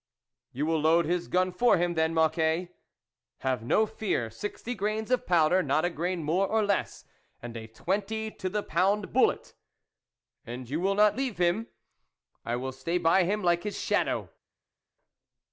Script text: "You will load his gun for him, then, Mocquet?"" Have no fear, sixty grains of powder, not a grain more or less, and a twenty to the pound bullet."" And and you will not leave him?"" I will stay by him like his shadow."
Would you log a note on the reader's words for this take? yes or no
yes